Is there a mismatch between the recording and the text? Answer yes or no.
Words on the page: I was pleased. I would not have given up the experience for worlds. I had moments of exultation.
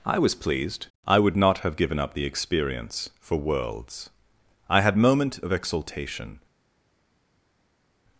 yes